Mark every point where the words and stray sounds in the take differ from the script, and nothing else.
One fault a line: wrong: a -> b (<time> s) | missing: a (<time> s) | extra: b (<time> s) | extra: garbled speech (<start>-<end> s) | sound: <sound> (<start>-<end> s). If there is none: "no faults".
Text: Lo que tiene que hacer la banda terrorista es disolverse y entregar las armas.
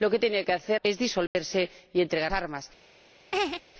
missing: la banda terrorista (0.8 s)
sound: dropout (1.3-1.4 s)
missing: las (2.3 s)
sound: laugh (3.3-3.6 s)